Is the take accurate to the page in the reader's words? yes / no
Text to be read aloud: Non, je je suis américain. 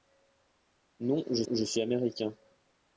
yes